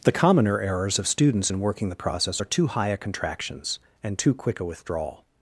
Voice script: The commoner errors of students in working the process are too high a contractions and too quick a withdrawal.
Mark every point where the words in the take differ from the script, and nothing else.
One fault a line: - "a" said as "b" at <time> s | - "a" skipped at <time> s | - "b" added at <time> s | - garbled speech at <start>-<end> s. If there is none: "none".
none